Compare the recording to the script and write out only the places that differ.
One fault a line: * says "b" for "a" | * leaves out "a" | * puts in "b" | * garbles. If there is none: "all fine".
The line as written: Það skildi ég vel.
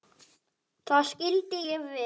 all fine